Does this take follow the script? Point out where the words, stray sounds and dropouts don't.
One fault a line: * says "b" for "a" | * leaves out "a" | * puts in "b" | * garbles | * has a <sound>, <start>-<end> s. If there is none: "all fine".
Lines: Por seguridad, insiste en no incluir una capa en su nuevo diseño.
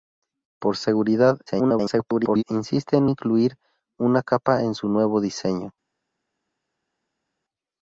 * garbles
* leaves out "no"